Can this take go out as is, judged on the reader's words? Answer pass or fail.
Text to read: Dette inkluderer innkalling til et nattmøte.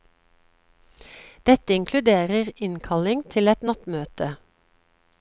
pass